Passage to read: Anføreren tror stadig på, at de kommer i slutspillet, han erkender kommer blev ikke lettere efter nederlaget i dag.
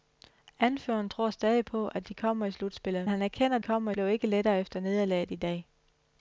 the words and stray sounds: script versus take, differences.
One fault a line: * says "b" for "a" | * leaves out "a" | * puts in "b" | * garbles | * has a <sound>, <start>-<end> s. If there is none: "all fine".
all fine